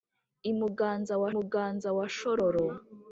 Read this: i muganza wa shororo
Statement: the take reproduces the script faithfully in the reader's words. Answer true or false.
false